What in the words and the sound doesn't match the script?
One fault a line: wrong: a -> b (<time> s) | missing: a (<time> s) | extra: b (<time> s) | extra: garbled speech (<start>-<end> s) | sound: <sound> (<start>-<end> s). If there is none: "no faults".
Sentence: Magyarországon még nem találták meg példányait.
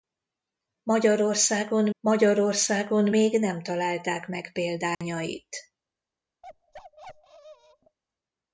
extra: magyarországon (2.0 s)
sound: dropout (4.9-5.0 s)
sound: bark (6.4-8.0 s)